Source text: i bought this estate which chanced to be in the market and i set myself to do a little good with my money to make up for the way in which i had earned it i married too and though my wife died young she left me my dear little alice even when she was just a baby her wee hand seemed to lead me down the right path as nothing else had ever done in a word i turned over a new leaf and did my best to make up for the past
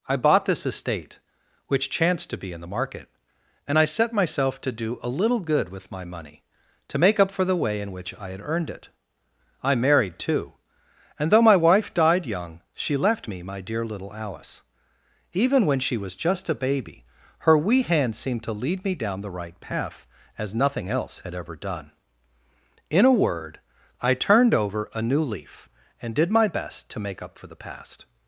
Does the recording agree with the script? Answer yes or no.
yes